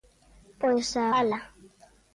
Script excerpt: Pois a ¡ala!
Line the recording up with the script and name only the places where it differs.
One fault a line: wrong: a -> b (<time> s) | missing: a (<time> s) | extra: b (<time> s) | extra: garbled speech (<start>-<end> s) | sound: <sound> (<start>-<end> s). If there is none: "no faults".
no faults